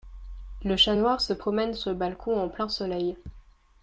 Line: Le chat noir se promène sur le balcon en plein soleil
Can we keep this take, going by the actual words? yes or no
yes